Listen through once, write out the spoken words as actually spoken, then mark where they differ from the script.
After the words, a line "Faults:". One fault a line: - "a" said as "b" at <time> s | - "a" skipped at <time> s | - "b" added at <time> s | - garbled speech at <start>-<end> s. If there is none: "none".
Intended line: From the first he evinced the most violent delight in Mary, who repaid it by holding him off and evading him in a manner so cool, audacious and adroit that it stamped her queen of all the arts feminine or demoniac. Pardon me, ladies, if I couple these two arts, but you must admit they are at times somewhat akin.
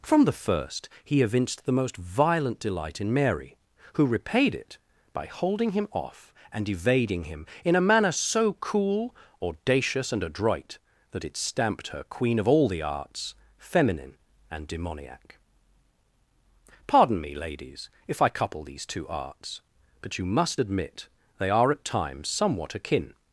From the first he evinced the most violent delight in Mary, who repaid it by holding him off and evading him in a manner so cool, audacious and adroit that it stamped her queen of all the arts feminine and demoniac. Pardon me, ladies, if I couple these two arts, but you must admit they are at times somewhat akin.
Faults:
- "or" said as "and" at 14.5 s